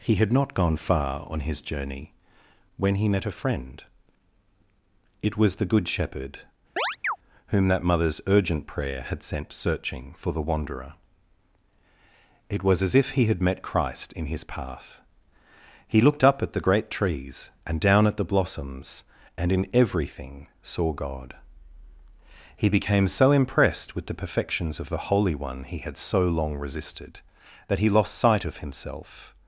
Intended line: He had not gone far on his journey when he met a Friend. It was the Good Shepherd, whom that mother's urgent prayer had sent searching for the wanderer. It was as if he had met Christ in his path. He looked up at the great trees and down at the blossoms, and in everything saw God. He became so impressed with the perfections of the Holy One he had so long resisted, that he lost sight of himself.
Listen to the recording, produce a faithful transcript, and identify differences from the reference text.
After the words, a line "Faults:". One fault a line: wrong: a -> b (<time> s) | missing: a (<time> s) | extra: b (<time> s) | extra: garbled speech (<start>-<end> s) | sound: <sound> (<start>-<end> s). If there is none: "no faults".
He had not gone far on his journey when he met a Friend. It was the Good Shepherd, whom that mother's urgent prayer had sent searching for the wanderer. It was as if he had met Christ in his path. He looked up at the great trees and down at the blossoms, and in everything saw God. He became so impressed with the perfections of the Holy One he had so long resisted, that he lost sight of himself.
Faults:
sound: chirp (6.8-7.2 s)